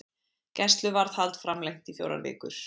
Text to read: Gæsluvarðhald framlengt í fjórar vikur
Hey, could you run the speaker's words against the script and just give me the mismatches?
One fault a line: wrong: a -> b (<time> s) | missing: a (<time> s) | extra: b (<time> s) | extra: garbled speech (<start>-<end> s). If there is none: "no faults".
no faults